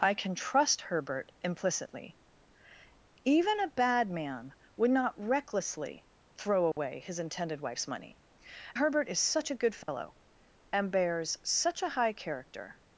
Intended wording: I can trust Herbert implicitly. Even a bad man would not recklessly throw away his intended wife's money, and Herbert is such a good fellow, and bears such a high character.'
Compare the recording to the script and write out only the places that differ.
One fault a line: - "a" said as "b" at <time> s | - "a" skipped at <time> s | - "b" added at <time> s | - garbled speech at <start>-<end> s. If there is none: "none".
- "and" skipped at 8.2 s